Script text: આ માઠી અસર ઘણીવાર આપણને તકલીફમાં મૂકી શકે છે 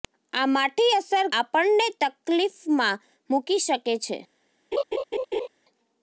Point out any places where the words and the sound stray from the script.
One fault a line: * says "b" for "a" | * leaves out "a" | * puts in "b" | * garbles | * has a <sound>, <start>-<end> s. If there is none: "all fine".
* leaves out "ઘણીવાર"
* has a laugh, 4.7-5.5 s